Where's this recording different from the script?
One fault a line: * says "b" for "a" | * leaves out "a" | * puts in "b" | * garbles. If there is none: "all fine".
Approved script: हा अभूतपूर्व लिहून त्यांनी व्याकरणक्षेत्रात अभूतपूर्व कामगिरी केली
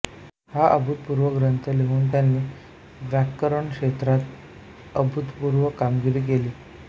* puts in "ग्रंथ"